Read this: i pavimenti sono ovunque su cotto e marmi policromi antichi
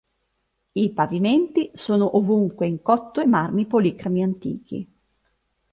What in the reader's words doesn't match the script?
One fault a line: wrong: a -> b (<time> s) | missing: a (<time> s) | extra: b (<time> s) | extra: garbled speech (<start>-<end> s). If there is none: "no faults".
wrong: su -> in (2.6 s)